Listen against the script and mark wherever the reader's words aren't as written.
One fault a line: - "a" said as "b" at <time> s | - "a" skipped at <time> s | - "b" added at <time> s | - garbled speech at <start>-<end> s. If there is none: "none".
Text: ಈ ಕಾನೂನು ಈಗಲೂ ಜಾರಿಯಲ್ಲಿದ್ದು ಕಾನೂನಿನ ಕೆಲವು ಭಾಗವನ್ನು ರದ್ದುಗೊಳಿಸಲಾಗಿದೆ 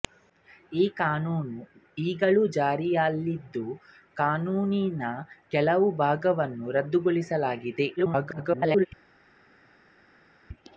- garbled speech at 8.0-8.9 s